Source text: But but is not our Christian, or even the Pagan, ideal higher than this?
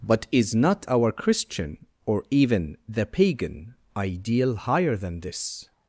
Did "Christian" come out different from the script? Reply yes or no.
no